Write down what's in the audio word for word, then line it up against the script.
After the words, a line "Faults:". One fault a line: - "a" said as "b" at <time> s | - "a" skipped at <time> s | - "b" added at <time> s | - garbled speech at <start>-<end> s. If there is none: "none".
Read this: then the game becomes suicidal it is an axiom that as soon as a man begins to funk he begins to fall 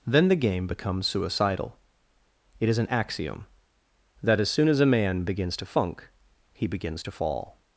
then the game becomes suicidal it is an axiom that as soon as a man begins to funk he begins to fall
Faults:
none